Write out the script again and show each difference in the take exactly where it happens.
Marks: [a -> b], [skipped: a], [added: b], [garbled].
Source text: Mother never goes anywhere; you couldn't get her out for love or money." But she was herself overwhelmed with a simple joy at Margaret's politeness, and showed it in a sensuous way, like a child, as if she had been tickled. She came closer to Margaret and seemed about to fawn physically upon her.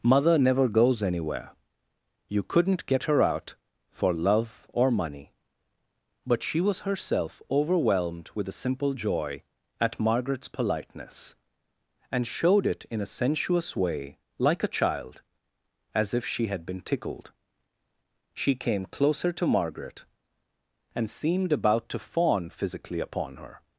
Mother never goes anywhere; you couldn't get her out for love or money." But she was herself overwhelmed with a simple joy at Margaret's politeness, and showed it in a sensuous way, like a child, as if she had been tickled. She came closer to Margaret and seemed about to fawn physically upon her.